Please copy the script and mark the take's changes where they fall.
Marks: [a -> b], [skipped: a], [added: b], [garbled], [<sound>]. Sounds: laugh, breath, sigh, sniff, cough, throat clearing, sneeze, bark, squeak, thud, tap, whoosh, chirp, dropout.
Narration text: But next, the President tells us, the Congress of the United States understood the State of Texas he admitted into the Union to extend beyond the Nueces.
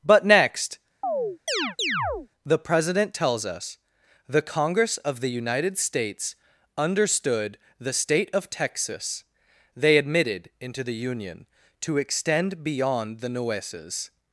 But next, [chirp] the President tells us, the Congress of the United States understood the State of Texas [he -> they] admitted into the Union to extend beyond the Nueces.